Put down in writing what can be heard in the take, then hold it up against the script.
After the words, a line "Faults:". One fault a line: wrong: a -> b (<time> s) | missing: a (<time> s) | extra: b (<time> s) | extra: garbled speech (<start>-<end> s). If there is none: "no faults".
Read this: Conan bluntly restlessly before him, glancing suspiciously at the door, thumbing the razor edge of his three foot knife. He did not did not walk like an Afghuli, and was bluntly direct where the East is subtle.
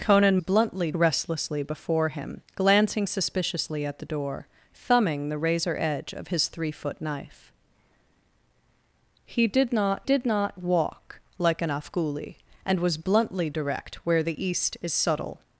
Conan bluntly restlessly before him, glancing suspiciously at the door, thumbing the razor edge of his three foot knife. He did not did not walk like an Afghuli, and was bluntly direct where the East is subtle.
Faults:
no faults